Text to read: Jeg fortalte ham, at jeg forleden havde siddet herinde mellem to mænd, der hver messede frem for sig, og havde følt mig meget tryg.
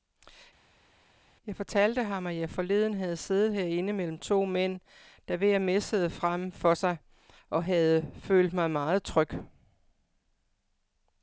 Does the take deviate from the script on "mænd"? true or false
false